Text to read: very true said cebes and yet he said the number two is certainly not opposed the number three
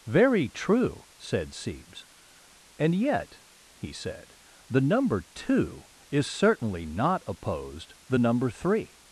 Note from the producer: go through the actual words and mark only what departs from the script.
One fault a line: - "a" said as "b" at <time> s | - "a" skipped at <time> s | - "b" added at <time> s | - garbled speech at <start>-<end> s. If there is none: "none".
none